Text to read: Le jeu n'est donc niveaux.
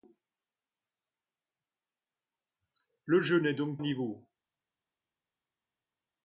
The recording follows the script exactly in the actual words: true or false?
true